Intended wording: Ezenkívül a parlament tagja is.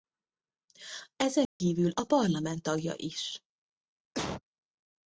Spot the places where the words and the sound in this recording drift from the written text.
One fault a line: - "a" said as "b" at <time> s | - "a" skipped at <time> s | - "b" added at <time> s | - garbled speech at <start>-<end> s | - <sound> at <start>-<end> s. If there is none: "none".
- dropout at 1.5-1.6 s
- cough at 4.1-4.4 s